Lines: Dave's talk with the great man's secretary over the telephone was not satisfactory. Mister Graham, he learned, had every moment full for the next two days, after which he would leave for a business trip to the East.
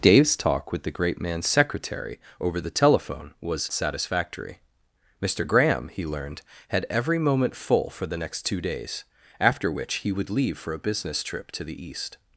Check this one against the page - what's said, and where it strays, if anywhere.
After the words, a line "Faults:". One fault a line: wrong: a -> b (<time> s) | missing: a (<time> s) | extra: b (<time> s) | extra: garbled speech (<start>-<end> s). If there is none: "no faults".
Dave's talk with the great man's secretary over the telephone was satisfactory. Mister Graham, he learned, had every moment full for the next two days, after which he would leave for a business trip to the East.
Faults:
missing: not (3.7 s)